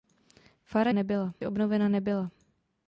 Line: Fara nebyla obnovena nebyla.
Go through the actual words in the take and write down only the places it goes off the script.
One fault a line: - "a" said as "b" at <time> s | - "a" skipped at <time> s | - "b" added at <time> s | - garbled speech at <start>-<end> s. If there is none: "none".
none